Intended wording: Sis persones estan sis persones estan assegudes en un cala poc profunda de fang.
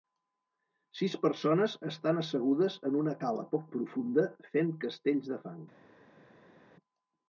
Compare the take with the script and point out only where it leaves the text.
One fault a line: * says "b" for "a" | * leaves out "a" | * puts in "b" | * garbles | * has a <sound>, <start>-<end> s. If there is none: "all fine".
* leaves out "sis persones estan"
* says "una" for "un"
* puts in "fent castells"